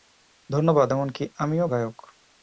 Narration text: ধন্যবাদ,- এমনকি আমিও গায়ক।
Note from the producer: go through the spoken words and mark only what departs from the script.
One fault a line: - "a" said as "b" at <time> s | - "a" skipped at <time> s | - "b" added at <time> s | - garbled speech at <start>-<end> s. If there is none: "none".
none